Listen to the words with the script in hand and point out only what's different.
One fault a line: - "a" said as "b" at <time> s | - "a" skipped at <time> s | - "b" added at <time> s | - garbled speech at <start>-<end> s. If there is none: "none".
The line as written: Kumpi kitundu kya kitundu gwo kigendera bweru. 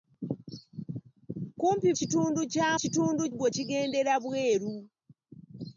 none